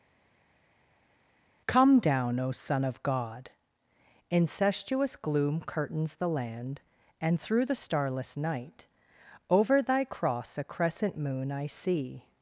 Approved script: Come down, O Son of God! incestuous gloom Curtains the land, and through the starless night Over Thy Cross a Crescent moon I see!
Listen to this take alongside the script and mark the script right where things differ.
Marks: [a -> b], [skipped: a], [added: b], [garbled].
Come down, O Son of God! incestuous gloom Curtains the land, and through the starless night Over Thy Cross a Crescent moon I see!